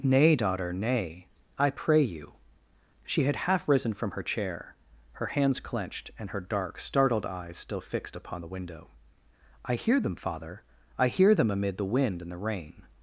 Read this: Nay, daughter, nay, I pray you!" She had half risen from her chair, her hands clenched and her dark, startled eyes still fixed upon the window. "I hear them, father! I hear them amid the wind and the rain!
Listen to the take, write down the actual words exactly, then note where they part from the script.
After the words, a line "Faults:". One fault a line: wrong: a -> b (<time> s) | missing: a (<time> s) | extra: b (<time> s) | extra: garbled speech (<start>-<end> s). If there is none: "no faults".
Nay, daughter, nay, I pray you!" She had half risen from her chair, her hands clenched and her dark, startled eyes still fixed upon the window. "I hear them, father! I hear them amid the wind and the rain!
Faults:
no faults